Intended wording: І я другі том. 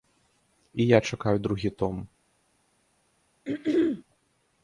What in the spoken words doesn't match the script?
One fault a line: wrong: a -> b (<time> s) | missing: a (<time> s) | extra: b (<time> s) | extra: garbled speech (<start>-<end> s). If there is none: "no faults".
extra: чакаю (1.0 s)